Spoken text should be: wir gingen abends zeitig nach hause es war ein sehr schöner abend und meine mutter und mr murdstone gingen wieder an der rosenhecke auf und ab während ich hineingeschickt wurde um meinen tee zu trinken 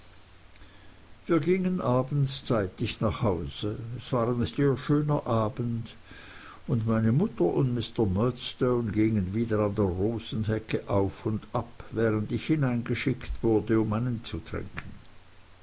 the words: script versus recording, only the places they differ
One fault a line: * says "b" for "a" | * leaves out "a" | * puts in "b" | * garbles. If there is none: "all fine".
* leaves out "tee"